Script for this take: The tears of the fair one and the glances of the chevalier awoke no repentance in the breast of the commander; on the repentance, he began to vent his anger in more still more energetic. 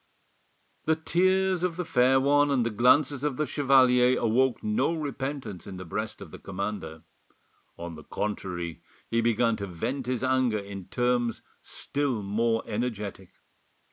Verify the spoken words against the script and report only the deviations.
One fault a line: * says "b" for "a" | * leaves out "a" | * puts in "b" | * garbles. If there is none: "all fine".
* says "contrary" for "repentance"
* says "terms" for "more"